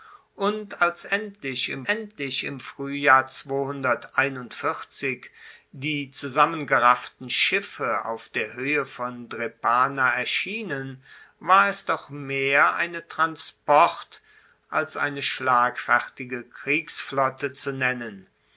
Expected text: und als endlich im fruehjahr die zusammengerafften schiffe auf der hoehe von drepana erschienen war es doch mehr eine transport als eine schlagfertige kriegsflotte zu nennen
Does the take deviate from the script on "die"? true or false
false